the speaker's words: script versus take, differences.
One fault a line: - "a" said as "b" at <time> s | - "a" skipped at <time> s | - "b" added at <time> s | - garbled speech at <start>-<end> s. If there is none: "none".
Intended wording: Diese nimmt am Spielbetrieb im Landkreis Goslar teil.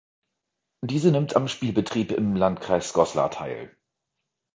none